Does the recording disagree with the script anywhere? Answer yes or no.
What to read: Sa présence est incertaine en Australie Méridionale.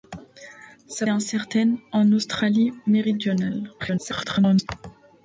yes